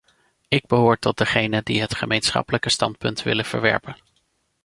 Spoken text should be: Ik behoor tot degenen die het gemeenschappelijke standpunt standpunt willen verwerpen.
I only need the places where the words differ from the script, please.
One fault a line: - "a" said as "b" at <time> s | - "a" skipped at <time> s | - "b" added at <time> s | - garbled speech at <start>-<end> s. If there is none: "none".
- "standpunt" skipped at 3.2 s